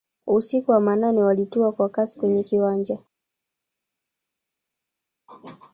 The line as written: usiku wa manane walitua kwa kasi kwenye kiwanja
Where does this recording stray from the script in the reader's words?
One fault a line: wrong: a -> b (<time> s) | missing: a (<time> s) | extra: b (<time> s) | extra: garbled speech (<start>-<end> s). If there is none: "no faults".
no faults